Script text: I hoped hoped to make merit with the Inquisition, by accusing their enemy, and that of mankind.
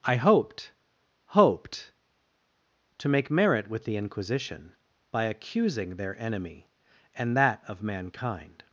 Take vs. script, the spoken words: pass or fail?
pass